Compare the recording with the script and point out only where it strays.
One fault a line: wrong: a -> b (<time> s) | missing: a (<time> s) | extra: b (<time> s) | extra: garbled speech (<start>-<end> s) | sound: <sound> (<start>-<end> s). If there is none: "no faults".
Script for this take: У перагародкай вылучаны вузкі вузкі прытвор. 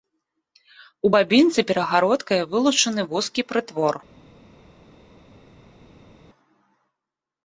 extra: бабінцы (1.1 s)
missing: вузкі (3.4 s)